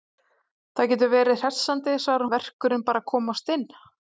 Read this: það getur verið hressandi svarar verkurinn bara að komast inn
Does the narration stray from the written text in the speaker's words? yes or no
no